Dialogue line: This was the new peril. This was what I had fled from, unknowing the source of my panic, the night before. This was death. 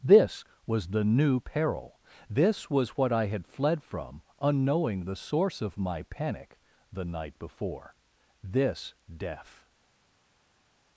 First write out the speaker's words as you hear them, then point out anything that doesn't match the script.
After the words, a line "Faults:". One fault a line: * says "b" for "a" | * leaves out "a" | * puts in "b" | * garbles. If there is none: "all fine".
This was the new peril. This was what I had fled from, unknowing the source of my panic, the night before. This death.
Faults:
* leaves out "was"